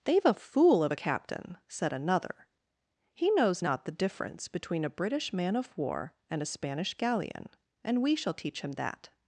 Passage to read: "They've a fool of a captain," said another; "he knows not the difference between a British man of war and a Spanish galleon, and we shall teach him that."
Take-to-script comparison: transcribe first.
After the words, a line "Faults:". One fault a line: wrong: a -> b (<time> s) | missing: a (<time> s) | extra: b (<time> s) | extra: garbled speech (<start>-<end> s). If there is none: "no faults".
"They've a fool of a captain," said another; "he knows not the difference between a British man of war and a Spanish galleon, and we shall teach him that."
Faults:
no faults